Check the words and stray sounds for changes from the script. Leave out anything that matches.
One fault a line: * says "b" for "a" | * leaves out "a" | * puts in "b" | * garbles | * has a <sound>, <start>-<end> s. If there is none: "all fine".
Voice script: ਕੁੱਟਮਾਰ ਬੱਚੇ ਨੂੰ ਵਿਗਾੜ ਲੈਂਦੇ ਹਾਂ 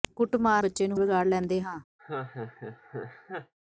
* has a laugh, 2.0-3.5 s